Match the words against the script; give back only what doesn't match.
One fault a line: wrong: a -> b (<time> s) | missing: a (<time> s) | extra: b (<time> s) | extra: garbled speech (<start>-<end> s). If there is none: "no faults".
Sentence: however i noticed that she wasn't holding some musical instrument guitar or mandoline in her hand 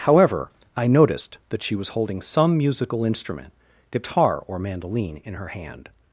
wrong: wasn't -> was (1.8 s)